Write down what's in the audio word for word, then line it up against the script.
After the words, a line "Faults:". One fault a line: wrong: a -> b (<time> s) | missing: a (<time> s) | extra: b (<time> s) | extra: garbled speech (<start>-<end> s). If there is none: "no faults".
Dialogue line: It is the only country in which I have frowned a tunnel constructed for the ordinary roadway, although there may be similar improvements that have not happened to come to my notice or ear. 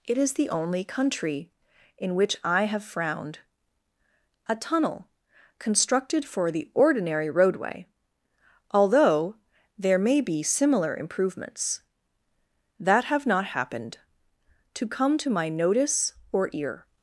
It is the only country in which I have frowned a tunnel constructed for the ordinary roadway, although there may be similar improvements that have not happened to come to my notice or ear.
Faults:
no faults